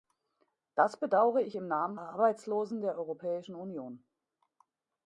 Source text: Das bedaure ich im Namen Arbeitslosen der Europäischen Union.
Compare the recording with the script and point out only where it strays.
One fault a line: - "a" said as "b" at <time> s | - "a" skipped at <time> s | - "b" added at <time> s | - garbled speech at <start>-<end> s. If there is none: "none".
none